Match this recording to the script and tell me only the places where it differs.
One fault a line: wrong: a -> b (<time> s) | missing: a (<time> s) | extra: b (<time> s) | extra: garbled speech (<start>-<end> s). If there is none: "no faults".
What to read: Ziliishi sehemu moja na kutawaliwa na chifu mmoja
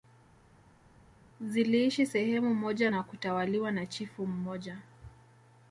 no faults